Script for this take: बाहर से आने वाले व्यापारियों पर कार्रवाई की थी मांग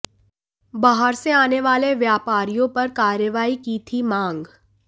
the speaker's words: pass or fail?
pass